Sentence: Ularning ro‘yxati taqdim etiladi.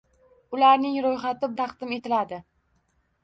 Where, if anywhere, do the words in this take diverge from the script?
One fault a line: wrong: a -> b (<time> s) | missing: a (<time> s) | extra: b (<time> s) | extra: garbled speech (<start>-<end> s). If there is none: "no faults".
no faults